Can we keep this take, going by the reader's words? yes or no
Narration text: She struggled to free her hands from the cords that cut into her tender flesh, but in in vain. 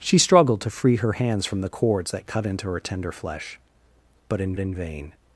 yes